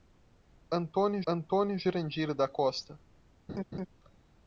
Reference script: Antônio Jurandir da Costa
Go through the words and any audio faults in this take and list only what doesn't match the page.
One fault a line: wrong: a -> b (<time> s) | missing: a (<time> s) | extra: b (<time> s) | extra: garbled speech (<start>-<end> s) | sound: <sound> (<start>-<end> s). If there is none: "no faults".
extra: antônio (1.3 s)
sound: laugh (3.5-3.9 s)